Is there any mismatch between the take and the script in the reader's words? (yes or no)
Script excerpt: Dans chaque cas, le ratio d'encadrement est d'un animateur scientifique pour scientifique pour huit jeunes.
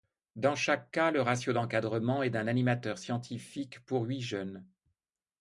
yes